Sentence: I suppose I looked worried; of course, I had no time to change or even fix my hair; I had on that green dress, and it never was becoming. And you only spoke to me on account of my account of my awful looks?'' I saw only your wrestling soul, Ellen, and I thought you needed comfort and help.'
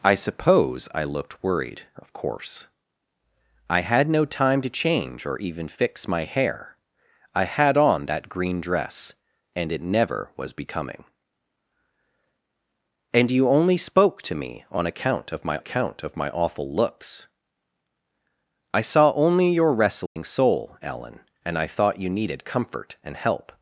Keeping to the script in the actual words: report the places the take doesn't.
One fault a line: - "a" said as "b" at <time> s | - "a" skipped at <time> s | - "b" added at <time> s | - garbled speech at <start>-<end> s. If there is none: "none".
none